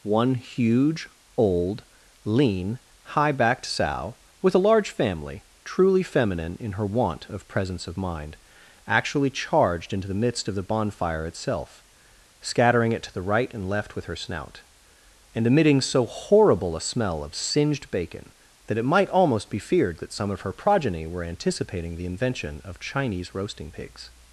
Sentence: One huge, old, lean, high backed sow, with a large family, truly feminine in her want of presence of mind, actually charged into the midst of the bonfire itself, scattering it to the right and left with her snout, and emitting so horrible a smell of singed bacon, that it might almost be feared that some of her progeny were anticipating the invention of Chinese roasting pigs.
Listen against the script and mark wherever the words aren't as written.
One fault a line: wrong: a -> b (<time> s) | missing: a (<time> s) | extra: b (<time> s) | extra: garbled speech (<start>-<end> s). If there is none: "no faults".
no faults